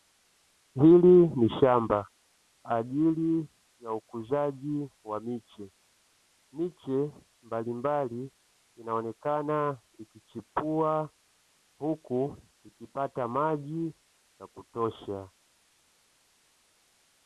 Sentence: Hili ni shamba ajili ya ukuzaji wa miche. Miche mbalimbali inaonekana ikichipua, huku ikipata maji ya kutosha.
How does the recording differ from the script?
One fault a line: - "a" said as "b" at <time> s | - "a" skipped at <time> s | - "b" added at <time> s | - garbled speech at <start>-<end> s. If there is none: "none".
none